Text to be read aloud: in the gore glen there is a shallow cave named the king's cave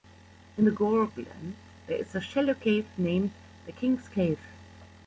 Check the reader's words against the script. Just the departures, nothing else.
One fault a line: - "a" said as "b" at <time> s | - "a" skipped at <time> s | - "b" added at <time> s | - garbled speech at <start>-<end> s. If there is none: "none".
none